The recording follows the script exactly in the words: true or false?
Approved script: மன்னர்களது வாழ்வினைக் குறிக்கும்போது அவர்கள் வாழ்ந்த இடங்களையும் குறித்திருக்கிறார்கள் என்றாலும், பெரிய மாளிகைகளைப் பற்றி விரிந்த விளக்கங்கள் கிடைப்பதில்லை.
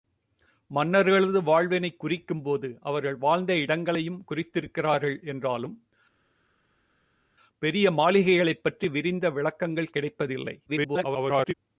false